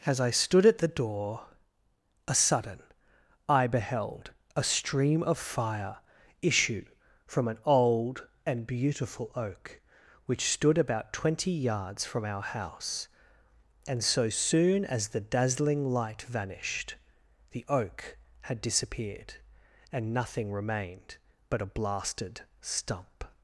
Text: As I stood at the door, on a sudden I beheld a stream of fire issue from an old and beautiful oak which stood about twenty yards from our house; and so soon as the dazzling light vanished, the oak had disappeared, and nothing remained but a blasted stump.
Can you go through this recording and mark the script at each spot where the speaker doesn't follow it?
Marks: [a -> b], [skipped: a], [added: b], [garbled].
As I stood at the door, [skipped: on] a sudden I beheld a stream of fire issue from an old and beautiful oak which stood about twenty yards from our house; and so soon as the dazzling light vanished, the oak had disappeared, and nothing remained but a blasted stump.